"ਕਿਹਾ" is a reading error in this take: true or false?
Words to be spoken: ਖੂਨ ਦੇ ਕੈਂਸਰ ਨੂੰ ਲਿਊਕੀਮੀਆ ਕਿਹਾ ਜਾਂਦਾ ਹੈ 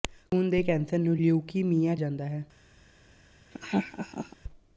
true